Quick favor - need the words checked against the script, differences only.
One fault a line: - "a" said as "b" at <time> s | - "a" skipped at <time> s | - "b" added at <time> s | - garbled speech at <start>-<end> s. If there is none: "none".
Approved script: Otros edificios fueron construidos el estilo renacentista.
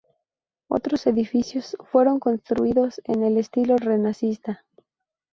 - "en" added at 3.0 s